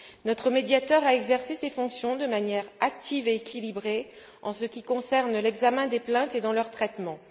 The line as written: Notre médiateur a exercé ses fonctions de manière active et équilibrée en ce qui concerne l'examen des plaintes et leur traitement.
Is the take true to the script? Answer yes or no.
yes